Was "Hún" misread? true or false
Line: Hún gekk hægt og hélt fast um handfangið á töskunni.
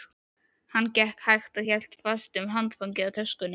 true